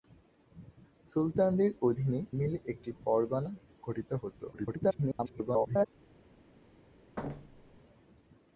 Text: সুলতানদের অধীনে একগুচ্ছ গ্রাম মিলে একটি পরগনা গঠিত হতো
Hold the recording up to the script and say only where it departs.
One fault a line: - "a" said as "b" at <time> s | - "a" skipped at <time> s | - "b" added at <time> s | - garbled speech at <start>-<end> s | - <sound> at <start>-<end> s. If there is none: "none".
- "একগুচ্ছ গ্রাম" skipped at 2.2 s
- garbled speech at 4.5-5.9 s
- thud at 7.2-7.8 s